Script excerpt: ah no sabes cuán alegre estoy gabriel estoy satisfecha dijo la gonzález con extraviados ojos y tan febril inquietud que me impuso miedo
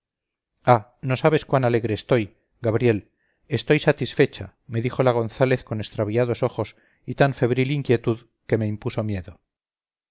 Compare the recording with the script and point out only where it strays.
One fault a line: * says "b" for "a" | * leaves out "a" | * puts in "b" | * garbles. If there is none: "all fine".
* puts in "me"